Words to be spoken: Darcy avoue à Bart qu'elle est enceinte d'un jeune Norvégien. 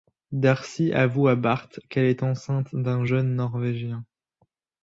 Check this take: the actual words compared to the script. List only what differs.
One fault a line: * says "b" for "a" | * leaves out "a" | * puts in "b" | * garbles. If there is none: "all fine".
all fine